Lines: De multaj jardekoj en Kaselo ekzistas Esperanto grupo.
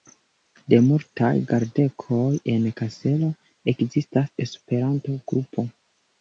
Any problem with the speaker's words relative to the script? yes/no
no